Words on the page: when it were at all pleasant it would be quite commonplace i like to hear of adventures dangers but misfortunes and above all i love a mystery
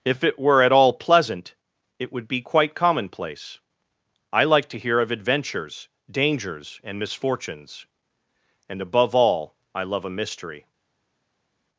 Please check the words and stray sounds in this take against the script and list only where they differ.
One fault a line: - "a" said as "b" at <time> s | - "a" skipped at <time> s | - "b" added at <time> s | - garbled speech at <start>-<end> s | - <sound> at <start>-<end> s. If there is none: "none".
- "when" said as "if" at 0.0 s
- "but" said as "and" at 6.8 s